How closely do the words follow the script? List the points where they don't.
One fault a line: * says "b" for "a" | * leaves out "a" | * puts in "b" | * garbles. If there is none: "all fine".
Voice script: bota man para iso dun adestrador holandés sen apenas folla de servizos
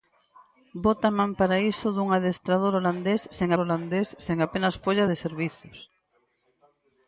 * puts in "holandés sen"